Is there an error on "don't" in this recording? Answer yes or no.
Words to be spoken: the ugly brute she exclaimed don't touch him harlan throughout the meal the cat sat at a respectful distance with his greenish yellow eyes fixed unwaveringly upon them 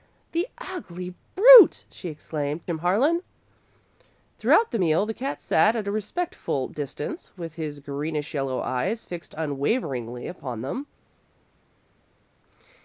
yes